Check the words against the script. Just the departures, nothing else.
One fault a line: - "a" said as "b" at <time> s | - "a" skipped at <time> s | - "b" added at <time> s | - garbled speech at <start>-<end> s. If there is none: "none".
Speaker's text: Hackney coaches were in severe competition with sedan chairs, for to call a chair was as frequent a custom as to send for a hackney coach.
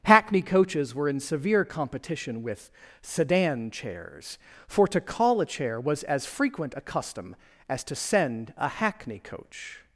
- "for" skipped at 8.5 s